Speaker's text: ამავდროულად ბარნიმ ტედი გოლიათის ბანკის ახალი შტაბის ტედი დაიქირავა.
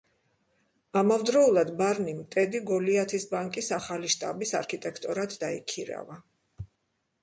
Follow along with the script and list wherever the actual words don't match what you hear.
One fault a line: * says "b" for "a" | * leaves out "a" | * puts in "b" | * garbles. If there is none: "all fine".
* says "არქიტექტორად" for "ტედი"